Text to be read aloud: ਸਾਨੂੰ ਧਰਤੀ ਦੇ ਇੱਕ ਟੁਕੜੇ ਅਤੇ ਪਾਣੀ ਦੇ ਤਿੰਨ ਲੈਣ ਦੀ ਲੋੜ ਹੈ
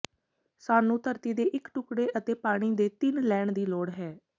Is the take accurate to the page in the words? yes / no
yes